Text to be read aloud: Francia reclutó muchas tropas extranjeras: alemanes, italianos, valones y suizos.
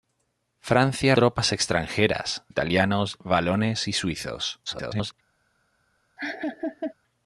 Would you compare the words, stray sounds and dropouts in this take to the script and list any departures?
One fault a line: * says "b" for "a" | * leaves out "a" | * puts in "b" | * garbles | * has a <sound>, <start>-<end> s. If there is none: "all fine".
* leaves out "reclutó muchas"
* leaves out "alemanes"
* garbles
* has a laugh, 6.2-6.9 s